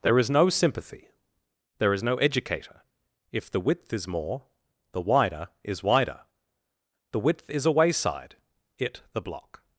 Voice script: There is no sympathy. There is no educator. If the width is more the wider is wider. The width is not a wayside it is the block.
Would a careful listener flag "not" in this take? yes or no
yes